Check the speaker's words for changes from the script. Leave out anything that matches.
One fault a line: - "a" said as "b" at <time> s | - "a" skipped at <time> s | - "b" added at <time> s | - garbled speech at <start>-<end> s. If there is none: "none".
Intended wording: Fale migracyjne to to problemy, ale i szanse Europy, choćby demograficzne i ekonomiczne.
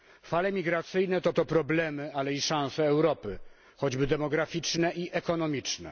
none